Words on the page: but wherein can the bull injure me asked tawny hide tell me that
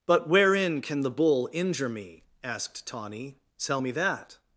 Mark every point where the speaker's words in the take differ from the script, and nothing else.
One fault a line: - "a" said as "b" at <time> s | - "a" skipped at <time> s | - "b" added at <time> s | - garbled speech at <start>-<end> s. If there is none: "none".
- "hide" skipped at 3.4 s